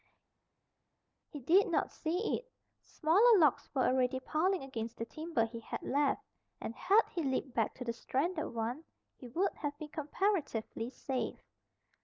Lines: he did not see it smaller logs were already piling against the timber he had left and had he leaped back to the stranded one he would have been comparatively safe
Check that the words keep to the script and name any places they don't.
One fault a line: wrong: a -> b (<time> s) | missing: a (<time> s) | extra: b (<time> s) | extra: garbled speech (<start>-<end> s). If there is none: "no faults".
no faults